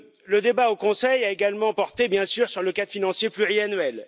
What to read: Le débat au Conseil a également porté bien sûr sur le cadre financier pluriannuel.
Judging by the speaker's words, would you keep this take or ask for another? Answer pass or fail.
pass